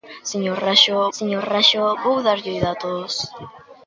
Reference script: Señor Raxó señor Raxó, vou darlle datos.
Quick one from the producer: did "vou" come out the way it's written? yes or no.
yes